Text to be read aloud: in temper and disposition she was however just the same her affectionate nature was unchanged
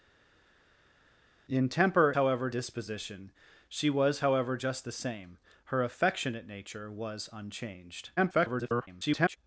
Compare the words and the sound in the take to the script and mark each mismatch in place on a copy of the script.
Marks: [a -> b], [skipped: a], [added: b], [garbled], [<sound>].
in temper [and -> however] disposition she was however just the same her affectionate nature was unchanged [garbled]